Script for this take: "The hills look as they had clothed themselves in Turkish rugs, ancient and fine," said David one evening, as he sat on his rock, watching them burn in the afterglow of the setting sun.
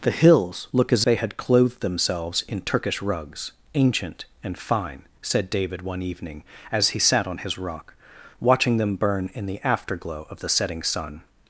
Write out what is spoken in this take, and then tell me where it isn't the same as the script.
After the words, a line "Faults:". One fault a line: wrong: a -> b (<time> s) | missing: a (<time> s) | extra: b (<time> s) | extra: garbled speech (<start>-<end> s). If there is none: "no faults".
"The hills look as they had clothed themselves in Turkish rugs, ancient and fine," said David one evening, as he sat on his rock, watching them burn in the afterglow of the setting sun.
Faults:
no faults